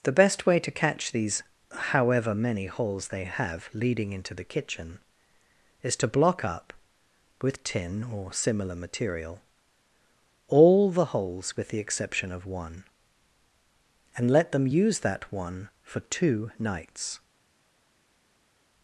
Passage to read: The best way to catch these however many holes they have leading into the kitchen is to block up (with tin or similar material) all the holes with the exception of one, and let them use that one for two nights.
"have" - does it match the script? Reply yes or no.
yes